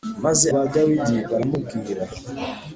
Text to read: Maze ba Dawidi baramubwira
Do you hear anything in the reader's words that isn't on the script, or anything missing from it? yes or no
no